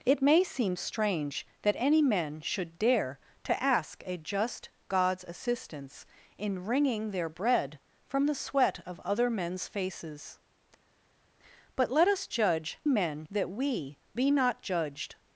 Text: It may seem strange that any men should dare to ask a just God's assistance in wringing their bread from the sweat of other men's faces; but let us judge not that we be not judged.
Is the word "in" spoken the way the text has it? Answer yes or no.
yes